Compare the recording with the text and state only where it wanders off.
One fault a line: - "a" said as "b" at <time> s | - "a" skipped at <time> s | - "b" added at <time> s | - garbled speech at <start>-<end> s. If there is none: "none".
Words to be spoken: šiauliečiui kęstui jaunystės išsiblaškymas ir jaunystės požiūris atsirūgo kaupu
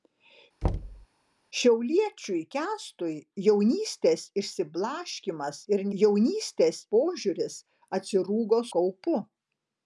none